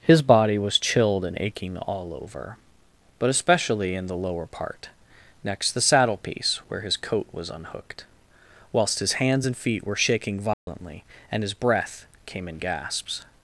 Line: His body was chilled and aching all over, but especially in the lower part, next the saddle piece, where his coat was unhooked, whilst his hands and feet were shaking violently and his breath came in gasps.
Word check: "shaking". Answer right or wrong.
right